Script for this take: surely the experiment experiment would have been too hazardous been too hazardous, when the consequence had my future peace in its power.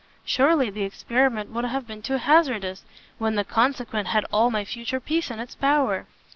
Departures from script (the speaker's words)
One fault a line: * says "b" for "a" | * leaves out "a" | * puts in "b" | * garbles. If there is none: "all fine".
* leaves out "experiment"
* leaves out "been too hazardous"
* puts in "all"